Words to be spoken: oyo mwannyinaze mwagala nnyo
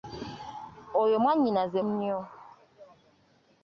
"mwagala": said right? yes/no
no